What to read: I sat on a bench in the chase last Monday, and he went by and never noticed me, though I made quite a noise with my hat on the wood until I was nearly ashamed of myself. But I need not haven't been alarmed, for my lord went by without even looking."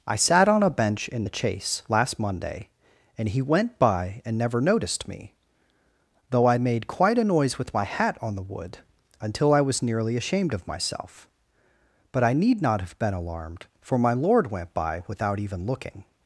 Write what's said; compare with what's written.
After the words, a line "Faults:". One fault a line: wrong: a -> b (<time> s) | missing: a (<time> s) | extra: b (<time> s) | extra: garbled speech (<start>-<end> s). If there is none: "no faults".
I sat on a bench in the chase last Monday, and he went by and never noticed me, though I made quite a noise with my hat on the wood until I was nearly ashamed of myself. But I need not have been alarmed, for my lord went by without even looking."
Faults:
wrong: haven't -> have (12.8 s)